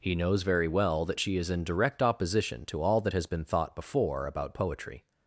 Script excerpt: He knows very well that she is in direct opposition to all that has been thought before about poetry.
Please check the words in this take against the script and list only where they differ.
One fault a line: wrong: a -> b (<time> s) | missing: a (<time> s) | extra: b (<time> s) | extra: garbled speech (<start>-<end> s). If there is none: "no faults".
no faults